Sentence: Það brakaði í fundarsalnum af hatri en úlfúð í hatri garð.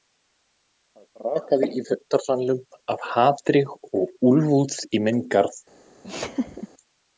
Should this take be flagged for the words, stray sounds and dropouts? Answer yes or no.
yes